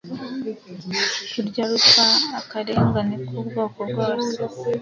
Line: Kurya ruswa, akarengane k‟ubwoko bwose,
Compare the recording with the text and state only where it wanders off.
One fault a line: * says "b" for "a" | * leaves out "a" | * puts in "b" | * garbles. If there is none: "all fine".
all fine